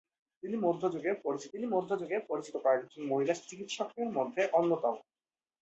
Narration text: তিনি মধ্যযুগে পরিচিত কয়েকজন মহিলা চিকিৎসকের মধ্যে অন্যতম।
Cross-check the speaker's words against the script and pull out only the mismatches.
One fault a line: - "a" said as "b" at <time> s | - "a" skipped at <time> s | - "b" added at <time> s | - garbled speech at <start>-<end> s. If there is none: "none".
- "তিনি মধ্যযুগে পরিচিত" added at 1.5 s